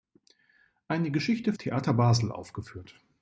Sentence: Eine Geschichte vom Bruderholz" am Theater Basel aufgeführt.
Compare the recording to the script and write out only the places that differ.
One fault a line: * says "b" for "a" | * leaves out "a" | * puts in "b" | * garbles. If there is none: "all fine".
* leaves out "vom Bruderholz am"